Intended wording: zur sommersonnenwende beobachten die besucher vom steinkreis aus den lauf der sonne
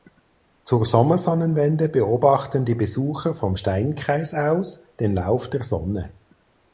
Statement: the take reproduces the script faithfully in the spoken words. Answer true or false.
true